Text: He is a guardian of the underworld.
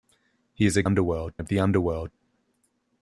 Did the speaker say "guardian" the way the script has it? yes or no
no